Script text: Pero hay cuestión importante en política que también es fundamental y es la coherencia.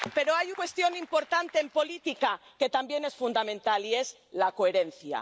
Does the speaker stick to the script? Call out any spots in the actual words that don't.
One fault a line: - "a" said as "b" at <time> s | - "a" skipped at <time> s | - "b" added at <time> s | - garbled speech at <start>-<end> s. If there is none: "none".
none